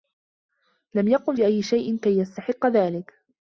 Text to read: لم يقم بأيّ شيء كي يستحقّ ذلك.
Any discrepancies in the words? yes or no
no